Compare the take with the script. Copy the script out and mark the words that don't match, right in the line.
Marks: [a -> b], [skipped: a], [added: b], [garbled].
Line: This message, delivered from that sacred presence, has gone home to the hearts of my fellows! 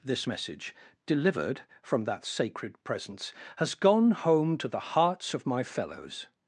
This message, delivered from that sacred presence, has gone home to the hearts of my fellows!